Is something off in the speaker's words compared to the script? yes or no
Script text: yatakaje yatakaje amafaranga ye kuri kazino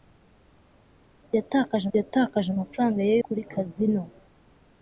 no